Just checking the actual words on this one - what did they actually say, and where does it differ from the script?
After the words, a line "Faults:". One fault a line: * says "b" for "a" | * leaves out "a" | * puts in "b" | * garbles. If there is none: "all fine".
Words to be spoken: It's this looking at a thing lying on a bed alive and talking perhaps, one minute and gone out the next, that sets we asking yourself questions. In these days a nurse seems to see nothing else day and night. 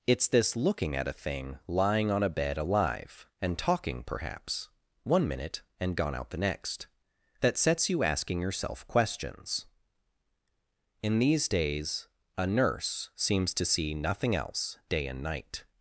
It's this looking at a thing lying on a bed alive and talking perhaps, one minute and gone out the next, that sets you asking yourself questions. In these days a nurse seems to see nothing else day and night.
Faults:
* says "you" for "we"